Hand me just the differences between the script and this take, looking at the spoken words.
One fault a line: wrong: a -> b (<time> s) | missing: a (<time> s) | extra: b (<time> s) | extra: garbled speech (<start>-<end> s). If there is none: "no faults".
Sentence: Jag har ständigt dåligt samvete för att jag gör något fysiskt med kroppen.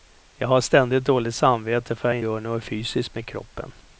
no faults